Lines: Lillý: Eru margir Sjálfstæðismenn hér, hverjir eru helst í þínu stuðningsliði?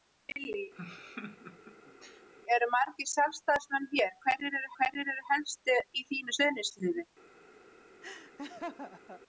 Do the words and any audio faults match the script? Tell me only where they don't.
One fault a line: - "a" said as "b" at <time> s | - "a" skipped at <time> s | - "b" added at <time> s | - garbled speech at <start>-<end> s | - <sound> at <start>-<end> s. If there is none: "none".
- laugh at 0.7-2.3 s
- "hverjir eru" added at 4.8 s
- laugh at 8.0-9.2 s